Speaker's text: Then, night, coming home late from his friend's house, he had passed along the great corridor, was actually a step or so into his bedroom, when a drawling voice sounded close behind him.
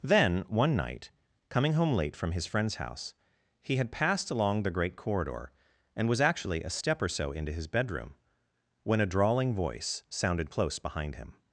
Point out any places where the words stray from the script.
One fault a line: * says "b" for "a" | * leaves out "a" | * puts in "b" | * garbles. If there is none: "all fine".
* puts in "one"
* puts in "and"